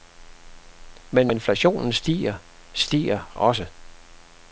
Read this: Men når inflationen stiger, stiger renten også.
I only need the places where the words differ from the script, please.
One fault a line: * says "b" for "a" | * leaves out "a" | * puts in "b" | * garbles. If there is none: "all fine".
* leaves out "når"
* leaves out "renten"